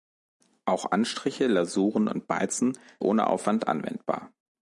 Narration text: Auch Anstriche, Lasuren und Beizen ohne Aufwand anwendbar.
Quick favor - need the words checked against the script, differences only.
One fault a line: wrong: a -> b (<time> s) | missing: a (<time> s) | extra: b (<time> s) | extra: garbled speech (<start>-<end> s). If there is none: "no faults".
no faults